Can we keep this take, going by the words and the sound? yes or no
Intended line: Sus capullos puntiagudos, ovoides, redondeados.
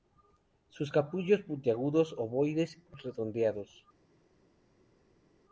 yes